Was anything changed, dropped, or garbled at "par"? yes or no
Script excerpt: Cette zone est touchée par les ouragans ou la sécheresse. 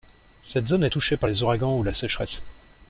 no